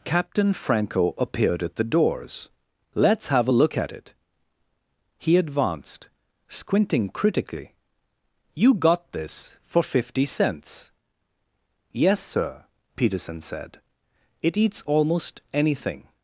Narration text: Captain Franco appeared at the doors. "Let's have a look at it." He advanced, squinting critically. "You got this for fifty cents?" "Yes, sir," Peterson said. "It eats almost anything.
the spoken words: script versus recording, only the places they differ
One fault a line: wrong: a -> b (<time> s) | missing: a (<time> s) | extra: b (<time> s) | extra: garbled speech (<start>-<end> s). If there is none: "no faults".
no faults